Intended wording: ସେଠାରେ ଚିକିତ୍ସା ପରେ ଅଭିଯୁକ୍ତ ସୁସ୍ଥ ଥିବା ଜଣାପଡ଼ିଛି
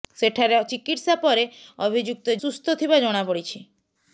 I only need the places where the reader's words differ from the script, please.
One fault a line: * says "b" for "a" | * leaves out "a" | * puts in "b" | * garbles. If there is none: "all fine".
all fine